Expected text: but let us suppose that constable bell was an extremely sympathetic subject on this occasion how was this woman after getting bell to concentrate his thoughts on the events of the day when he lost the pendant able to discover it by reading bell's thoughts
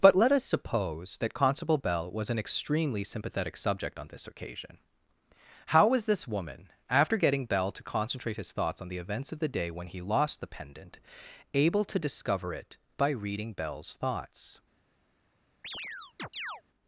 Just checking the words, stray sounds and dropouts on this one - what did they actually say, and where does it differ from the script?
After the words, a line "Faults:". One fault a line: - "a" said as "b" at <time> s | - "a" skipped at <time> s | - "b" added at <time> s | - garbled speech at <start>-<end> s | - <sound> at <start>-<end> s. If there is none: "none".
but let us suppose that constable bell was an extremely sympathetic subject on this occasion how was this woman after getting bell to concentrate his thoughts on the events of the day when he lost the pendant able to discover it by reading bell's thoughts
Faults:
- chirp at 15.6-16.6 s